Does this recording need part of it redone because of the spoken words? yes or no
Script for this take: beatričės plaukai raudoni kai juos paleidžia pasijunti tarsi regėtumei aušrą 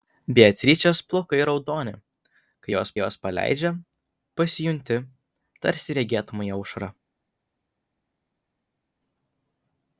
yes